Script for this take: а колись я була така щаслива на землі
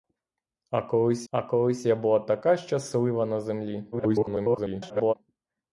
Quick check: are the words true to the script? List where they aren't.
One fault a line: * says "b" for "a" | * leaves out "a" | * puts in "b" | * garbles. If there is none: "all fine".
* puts in "а колись"
* garbles